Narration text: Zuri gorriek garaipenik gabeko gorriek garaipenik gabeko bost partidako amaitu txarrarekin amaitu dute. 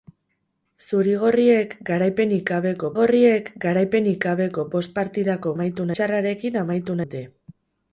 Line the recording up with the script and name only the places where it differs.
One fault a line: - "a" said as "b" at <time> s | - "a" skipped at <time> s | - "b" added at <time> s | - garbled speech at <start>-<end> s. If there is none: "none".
none